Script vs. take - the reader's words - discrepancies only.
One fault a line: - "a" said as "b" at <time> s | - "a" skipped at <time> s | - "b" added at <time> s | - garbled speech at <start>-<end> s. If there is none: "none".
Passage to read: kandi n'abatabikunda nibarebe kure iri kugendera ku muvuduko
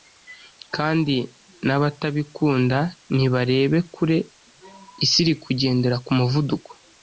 - "isi" added at 5.0 s